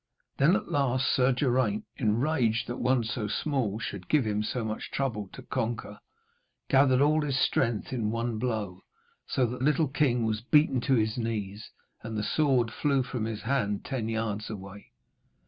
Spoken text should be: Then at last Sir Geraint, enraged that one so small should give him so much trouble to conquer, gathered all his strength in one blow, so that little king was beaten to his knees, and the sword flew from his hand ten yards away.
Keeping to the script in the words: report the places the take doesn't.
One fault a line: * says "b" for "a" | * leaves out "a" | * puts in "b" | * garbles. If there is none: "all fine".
all fine